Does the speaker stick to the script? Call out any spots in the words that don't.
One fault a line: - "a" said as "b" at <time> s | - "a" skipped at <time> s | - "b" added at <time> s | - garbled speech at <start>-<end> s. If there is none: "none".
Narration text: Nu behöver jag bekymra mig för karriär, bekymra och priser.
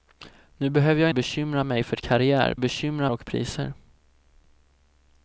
none